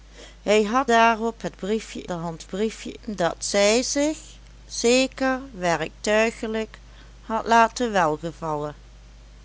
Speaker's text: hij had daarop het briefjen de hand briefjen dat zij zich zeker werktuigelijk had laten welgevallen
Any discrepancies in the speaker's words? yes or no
no